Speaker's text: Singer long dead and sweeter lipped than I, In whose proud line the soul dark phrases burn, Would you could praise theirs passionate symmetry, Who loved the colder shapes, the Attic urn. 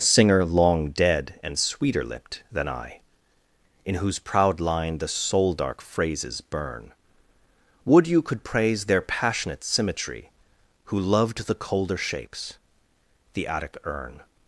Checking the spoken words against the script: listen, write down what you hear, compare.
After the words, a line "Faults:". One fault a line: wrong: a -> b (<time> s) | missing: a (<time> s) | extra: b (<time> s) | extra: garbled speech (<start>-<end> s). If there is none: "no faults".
Singer long dead and sweeter lipped than I, In whose proud line the soul dark phrases burn, Would you could praise their passionate symmetry, Who loved the colder shapes, the Attic urn.
Faults:
wrong: theirs -> their (8.8 s)